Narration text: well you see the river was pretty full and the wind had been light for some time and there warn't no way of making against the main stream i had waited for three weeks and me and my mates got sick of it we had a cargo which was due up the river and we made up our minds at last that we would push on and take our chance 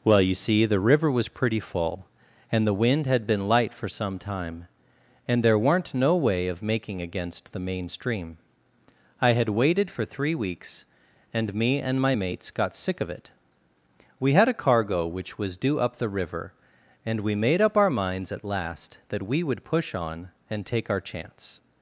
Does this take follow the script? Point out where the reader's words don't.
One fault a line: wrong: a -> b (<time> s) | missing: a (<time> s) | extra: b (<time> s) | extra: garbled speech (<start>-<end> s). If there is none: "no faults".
wrong: warn't -> weren't (5.6 s)